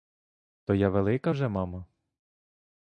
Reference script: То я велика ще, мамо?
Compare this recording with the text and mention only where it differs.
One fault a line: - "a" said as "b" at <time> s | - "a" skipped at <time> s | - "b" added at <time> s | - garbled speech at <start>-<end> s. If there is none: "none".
- "ще" said as "вже" at 1.3 s